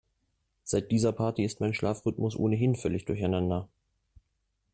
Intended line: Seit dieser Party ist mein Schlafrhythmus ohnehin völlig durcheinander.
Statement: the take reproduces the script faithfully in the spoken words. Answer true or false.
true